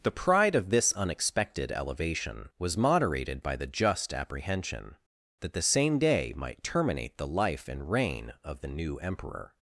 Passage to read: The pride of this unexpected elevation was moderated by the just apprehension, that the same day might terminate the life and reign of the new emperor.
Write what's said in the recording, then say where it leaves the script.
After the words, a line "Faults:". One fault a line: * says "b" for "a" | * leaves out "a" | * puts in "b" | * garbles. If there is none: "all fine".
The pride of this unexpected elevation was moderated by the just apprehension, that the same day might terminate the life and reign of the new emperor.
Faults:
all fine